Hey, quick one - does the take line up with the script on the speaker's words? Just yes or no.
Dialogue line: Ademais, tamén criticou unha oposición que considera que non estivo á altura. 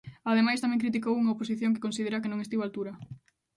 yes